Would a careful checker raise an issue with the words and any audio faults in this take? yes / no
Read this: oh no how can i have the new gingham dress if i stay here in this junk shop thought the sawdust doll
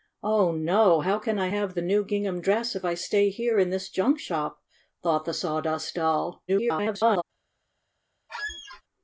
yes